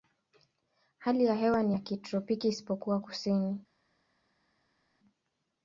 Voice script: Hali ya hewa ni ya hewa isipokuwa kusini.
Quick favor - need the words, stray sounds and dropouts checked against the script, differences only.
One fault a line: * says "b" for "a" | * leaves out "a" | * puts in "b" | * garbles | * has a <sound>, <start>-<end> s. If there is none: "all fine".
* says "kitropiki" for "hewa"